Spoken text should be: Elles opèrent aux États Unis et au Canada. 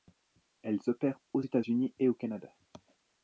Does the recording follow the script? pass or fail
pass